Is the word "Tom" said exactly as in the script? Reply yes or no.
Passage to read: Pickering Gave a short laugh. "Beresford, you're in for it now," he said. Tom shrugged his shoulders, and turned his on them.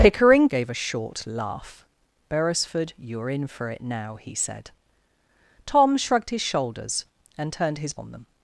yes